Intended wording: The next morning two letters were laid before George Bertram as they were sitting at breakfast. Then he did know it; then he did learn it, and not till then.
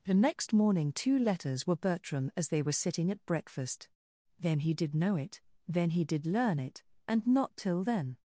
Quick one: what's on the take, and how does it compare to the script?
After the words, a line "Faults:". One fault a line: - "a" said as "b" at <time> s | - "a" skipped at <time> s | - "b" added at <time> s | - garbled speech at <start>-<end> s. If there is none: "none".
The next morning two letters were Bertram as they were sitting at breakfast. Then he did know it; then he did learn it, and not till then.
Faults:
- "laid before George" skipped at 1.8 s